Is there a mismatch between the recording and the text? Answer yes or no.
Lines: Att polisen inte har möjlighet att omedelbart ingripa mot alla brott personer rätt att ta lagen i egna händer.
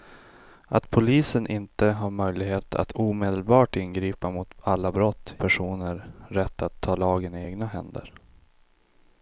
no